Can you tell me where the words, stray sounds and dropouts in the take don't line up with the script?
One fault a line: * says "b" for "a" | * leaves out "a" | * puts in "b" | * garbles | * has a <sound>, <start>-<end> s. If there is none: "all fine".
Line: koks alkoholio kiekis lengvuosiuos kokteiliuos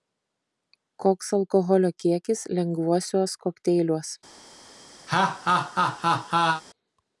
* has a laugh, 5.1-6.6 s